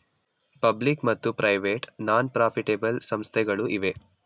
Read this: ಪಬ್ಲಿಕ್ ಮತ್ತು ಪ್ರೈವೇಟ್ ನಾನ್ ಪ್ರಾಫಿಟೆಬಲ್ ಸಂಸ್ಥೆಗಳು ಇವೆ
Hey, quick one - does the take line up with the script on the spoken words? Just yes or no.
yes